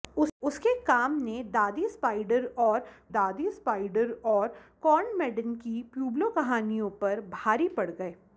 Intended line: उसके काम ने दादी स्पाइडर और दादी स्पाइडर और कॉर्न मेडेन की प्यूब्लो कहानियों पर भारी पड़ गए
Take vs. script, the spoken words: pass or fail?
pass